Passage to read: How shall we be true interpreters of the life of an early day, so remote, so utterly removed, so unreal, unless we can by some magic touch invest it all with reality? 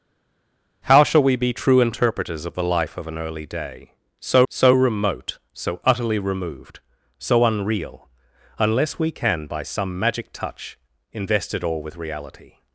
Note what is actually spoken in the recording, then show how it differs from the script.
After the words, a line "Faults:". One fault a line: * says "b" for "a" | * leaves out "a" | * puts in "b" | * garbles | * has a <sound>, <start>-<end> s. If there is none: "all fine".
How shall we be true interpreters of the life of an early day, so so remote, so utterly removed, so unreal, unless we can by some magic touch invest it all with reality?
Faults:
* puts in "so"